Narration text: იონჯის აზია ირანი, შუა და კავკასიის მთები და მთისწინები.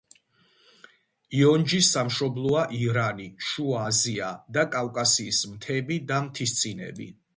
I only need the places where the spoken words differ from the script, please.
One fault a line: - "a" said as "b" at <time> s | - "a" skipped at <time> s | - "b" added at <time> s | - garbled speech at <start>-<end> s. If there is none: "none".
- "აზია" said as "სამშობლოა" at 2.0 s
- "აზია" added at 3.9 s